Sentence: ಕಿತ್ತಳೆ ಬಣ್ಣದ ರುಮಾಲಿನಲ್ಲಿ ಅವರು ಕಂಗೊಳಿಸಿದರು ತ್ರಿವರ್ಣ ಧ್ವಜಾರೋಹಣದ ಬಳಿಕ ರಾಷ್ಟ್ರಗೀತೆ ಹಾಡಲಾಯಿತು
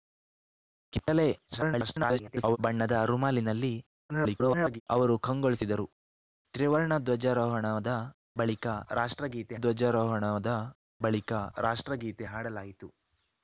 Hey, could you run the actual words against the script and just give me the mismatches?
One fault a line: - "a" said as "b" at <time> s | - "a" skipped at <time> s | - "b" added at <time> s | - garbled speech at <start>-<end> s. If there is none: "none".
- garbled speech at 1.5-2.6 s
- garbled speech at 4.1-4.8 s
- "ಧ್ವಜಾರೋಹಣದ ಬಳಿಕ ರಾಷ್ಟ್ರಗೀತೆ" added at 9.5 s